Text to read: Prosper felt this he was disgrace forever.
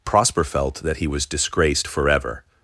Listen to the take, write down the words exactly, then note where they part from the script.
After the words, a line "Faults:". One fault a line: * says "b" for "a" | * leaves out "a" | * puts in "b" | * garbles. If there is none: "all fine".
Prosper felt that he was disgraced forever.
Faults:
* says "that" for "this"
* says "disgraced" for "disgrace"